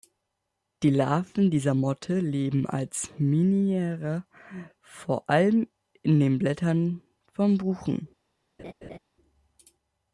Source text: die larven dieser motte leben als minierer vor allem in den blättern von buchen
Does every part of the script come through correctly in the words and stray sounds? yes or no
no